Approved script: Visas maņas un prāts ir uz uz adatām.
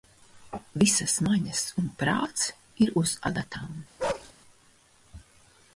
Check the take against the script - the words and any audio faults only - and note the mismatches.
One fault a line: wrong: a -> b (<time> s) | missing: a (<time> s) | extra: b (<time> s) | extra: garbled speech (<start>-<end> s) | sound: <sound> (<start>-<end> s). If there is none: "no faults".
missing: uz (3.2 s)
sound: bark (4.0-4.3 s)